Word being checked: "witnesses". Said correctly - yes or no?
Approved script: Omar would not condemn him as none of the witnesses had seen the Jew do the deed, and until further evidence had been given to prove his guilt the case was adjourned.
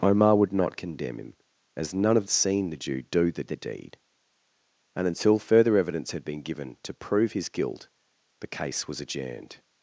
no